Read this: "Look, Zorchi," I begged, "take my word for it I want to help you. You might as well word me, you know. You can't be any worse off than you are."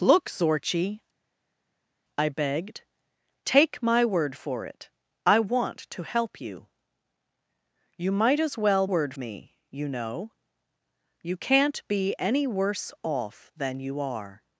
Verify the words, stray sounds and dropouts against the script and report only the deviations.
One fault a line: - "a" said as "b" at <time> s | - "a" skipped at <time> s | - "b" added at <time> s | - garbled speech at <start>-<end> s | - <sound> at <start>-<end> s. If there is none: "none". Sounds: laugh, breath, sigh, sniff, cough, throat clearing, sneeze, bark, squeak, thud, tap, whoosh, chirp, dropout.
none